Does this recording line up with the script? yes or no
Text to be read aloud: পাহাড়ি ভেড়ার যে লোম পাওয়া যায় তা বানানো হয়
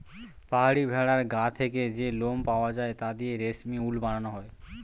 no